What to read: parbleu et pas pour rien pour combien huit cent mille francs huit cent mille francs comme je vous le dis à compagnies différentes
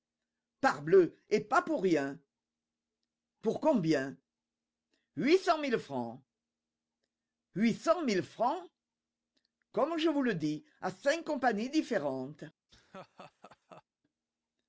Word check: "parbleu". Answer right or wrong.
right